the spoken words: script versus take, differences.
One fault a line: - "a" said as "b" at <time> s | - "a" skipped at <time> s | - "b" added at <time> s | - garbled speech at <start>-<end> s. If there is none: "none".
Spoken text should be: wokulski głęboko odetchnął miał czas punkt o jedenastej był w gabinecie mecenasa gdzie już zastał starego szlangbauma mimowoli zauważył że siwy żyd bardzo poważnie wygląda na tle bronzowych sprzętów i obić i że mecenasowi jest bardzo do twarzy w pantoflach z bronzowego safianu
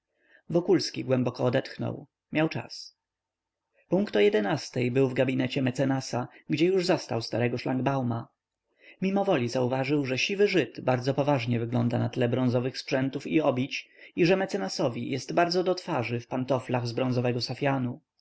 none